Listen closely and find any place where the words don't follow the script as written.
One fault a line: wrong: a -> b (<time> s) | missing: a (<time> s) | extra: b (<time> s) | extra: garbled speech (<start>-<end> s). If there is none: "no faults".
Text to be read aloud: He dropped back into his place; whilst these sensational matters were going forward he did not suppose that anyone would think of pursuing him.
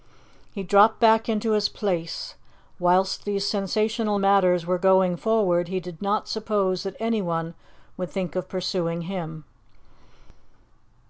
no faults